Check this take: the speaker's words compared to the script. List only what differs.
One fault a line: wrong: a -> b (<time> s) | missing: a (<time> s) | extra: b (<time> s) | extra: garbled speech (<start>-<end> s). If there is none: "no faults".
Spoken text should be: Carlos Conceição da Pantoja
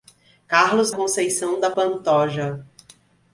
no faults